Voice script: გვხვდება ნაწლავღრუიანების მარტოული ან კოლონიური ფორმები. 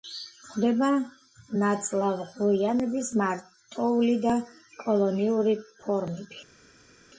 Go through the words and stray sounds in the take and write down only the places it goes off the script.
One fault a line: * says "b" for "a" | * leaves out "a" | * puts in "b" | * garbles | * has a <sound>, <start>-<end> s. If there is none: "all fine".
* says "და" for "ან"